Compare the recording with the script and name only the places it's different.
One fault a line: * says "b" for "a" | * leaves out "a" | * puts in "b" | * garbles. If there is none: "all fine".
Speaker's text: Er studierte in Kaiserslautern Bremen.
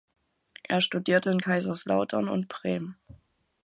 * puts in "und"